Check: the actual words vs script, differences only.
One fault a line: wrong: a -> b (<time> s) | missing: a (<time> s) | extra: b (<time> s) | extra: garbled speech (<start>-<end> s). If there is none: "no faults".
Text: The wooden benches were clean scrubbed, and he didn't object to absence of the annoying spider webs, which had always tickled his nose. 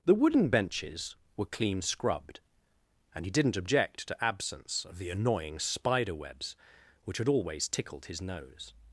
no faults